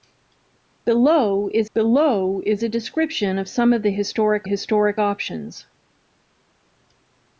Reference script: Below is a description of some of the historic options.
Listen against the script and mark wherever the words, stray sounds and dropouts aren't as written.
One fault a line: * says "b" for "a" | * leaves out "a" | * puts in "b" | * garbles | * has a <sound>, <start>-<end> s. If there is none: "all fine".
* puts in "below is"
* puts in "historic"